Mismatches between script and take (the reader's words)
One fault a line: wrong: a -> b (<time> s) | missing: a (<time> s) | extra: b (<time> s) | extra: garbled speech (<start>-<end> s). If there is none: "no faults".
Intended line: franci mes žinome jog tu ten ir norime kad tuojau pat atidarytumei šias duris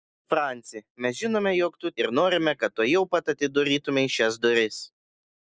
missing: ten (1.9 s)